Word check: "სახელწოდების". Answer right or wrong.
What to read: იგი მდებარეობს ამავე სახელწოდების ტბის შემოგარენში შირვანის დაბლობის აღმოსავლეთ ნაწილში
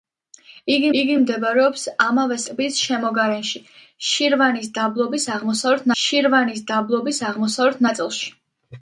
wrong